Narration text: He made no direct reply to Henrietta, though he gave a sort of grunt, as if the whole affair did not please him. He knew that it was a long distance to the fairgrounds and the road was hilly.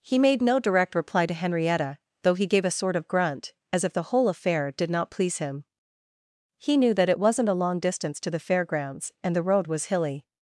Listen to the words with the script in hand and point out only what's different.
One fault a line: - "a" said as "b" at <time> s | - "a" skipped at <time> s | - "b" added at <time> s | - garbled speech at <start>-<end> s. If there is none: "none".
- "was" said as "wasn't" at 7.2 s